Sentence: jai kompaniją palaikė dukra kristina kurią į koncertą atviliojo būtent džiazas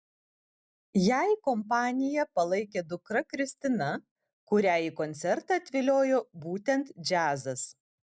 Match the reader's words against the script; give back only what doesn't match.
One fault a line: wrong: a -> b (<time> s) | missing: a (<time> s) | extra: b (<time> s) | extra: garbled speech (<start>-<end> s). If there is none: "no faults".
no faults